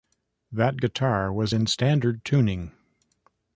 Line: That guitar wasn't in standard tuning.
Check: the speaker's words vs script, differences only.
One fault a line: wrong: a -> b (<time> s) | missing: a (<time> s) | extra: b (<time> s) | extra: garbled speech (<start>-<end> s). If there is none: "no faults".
wrong: wasn't -> was (1.3 s)